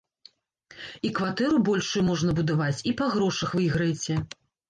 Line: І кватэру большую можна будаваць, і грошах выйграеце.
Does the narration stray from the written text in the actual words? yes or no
yes